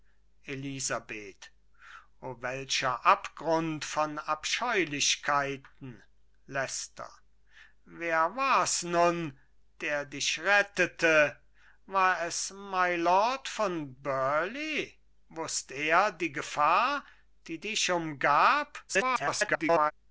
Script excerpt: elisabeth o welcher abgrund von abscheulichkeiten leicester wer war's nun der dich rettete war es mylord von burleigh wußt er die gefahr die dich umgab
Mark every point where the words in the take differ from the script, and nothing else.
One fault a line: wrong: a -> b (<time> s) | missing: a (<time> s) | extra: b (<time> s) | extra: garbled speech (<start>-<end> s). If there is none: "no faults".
extra: garbled speech (18.9-19.9 s)